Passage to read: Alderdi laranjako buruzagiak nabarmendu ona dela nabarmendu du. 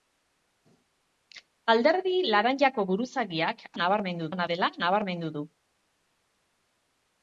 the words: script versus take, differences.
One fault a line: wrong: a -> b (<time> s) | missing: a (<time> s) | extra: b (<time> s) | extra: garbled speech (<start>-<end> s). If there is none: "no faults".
no faults